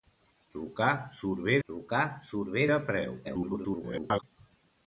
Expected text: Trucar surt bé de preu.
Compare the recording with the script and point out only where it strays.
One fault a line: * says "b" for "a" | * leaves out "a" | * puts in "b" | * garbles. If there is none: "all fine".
* puts in "trucar surt bé"
* garbles